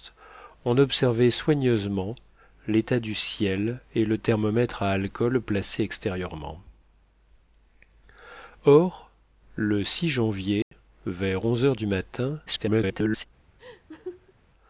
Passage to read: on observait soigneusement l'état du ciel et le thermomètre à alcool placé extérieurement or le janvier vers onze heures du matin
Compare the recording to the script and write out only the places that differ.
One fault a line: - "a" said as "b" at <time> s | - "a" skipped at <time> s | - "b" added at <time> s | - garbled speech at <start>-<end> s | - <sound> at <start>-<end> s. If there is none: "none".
- dropout at 10.6-10.7 s
- garbled speech at 12.5-13.3 s
- laugh at 13.6-14.3 s